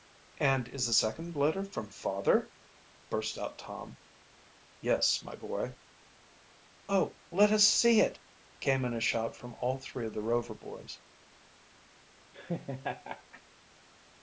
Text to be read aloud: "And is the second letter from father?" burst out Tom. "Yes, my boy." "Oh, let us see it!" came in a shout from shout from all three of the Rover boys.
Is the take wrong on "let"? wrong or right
right